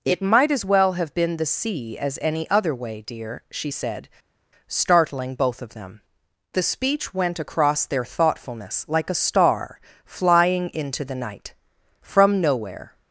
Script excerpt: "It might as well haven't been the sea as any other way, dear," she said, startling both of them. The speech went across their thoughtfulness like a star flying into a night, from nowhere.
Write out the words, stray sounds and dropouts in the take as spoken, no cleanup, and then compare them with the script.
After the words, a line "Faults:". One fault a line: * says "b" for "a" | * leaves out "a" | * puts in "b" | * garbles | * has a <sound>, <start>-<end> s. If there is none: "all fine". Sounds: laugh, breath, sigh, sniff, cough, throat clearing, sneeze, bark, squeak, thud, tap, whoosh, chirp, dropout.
"It might as well have been the sea as any other way, dear," she said, startling both of them. The speech went across their thoughtfulness like a star flying into the night, from nowhere.
Faults:
* says "have" for "haven't"
* says "the" for "a"